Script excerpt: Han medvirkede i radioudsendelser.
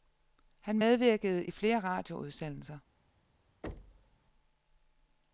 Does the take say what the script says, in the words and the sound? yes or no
no